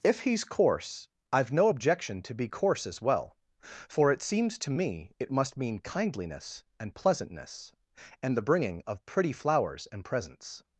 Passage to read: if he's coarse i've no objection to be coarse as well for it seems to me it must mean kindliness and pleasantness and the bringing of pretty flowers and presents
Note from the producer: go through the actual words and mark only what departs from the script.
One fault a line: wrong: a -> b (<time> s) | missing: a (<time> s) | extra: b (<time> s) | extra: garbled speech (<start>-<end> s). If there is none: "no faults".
no faults